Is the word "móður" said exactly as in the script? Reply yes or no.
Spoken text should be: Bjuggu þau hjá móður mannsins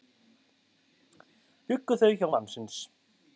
no